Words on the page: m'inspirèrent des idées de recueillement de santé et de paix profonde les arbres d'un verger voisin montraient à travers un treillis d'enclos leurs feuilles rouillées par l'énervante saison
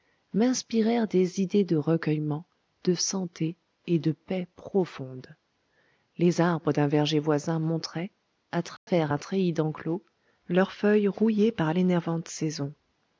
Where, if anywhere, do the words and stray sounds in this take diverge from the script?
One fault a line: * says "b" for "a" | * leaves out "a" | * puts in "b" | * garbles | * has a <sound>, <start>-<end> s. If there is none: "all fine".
* has a dropout, 8.8-8.9 s